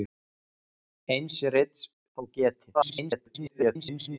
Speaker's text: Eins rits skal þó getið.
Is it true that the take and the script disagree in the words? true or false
true